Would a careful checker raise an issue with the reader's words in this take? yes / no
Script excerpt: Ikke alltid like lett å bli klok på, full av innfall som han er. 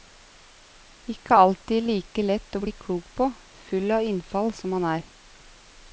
no